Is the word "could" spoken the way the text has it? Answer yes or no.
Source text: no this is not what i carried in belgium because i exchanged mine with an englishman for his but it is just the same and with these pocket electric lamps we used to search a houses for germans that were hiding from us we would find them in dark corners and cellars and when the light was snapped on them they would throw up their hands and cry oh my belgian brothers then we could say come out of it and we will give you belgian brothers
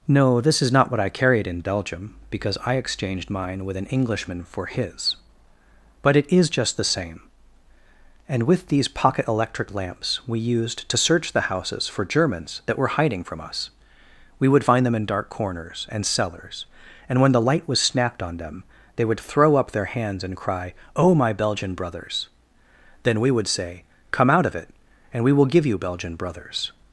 no